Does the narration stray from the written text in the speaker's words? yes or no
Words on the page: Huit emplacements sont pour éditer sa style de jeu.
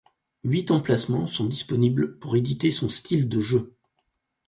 yes